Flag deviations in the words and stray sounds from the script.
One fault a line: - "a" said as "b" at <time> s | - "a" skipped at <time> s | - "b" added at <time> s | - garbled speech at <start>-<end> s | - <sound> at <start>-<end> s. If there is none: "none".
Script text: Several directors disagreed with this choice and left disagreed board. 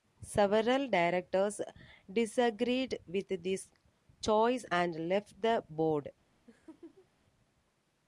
- "disagreed" said as "the" at 5.4 s
- laugh at 6.5-7.1 s